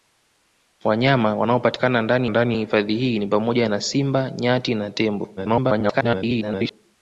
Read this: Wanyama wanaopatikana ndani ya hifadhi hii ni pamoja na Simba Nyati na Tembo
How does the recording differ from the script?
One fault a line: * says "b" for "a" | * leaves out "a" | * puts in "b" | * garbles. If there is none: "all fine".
* puts in "ndani"
* garbles